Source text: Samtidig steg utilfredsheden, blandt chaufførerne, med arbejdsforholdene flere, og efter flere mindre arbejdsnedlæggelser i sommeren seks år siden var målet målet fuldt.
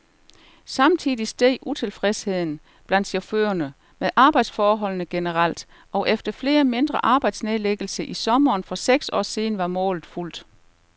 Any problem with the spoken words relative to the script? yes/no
yes